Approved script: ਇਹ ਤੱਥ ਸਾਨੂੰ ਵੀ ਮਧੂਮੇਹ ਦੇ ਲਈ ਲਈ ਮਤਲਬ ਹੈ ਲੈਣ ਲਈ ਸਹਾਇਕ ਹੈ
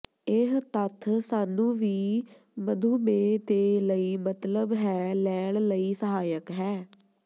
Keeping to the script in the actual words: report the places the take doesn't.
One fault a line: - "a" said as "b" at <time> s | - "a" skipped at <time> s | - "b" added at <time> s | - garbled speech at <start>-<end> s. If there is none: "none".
- "ਲਈ" skipped at 4.2 s